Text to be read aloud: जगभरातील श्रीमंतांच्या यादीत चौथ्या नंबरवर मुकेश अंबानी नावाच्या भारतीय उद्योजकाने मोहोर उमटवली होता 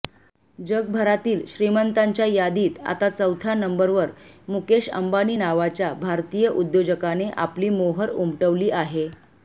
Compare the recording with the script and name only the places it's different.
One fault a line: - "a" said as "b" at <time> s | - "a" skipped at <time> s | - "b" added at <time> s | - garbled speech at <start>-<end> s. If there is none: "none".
- "आता" added at 2.8 s
- "आपली" added at 7.4 s
- "होता" said as "आहे" at 8.7 s